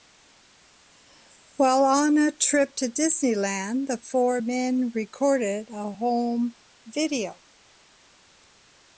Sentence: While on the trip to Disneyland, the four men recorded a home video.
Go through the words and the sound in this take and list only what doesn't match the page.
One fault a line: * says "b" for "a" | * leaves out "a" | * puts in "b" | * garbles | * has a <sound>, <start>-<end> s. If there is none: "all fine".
* says "a" for "the"